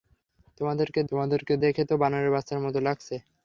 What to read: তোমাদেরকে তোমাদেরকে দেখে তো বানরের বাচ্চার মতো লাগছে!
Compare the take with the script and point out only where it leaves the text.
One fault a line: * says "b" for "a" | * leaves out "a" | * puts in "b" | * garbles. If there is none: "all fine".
all fine